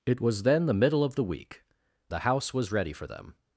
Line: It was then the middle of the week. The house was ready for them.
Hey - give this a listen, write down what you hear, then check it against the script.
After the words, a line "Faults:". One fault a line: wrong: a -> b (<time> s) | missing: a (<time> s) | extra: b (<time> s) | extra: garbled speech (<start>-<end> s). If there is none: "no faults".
It was then the middle of the week. The house was ready for them.
Faults:
no faults